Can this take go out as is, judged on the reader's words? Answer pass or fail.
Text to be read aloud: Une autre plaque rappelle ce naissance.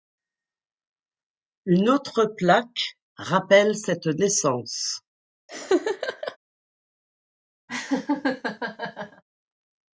fail